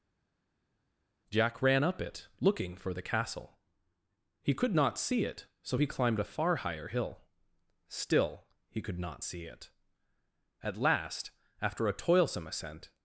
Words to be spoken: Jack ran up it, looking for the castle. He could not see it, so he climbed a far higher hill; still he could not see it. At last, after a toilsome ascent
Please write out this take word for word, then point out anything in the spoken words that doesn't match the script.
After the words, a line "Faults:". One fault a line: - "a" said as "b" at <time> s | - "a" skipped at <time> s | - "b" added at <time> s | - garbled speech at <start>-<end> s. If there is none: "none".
Jack ran up it, looking for the castle. He could not see it, so he climbed a far higher hill; still he could not see it. At last, after a toilsome ascent
Faults:
none